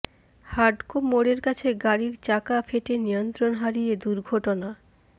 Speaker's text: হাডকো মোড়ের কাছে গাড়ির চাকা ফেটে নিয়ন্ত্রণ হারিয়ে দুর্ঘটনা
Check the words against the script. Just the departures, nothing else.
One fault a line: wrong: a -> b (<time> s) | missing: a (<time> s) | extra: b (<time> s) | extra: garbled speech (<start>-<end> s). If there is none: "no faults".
no faults